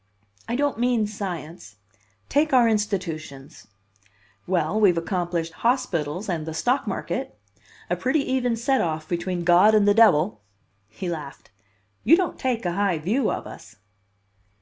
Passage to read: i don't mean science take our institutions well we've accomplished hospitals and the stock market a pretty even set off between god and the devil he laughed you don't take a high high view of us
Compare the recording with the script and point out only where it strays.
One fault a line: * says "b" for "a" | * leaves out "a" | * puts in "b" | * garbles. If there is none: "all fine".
* leaves out "high"